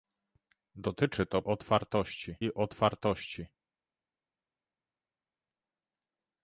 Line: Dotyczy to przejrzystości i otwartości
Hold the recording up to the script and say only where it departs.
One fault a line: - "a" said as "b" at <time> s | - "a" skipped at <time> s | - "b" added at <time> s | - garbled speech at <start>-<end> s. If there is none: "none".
- "przejrzystości" said as "otwartości" at 1.4 s